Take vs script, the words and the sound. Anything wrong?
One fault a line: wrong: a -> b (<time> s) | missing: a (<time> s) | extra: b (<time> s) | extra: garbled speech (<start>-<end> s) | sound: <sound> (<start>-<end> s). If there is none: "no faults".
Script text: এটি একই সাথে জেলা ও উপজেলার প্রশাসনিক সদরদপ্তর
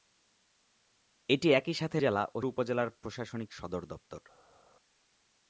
no faults